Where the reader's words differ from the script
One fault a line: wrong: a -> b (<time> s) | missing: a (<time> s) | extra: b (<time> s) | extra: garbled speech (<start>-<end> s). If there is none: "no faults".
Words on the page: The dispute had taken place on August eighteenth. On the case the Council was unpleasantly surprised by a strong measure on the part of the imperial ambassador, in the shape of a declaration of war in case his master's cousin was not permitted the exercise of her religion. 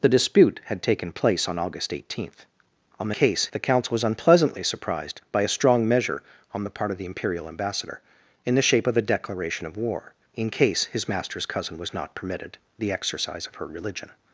no faults